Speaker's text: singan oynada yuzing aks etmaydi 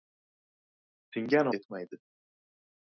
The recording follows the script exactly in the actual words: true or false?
false